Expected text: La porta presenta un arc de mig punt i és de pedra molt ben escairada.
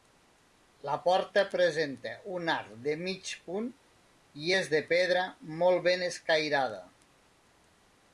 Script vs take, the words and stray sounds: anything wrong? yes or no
no